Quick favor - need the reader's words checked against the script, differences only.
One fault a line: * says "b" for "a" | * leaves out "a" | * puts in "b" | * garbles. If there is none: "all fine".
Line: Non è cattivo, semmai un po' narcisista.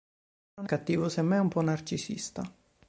* leaves out "è"